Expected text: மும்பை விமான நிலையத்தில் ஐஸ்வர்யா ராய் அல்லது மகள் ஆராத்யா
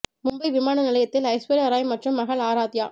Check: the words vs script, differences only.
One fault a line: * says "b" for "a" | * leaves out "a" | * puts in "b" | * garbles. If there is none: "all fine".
* says "மற்றும்" for "அல்லது"